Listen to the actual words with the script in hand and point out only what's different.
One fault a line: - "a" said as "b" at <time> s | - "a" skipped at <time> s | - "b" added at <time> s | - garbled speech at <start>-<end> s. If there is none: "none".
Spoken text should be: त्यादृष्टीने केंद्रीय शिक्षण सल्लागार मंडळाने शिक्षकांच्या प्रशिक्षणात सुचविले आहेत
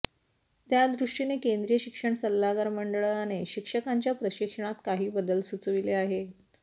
- "काही बदल" added at 4.9 s